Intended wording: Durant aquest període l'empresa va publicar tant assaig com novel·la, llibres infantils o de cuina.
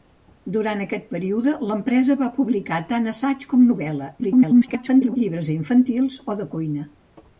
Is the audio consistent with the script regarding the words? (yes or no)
no